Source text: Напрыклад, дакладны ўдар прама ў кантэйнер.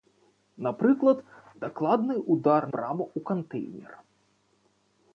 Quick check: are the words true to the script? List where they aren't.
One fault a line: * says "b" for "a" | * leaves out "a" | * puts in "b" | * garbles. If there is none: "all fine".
all fine